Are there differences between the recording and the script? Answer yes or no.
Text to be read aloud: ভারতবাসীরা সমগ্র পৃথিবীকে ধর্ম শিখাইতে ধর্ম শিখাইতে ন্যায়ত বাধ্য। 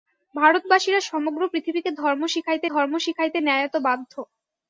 no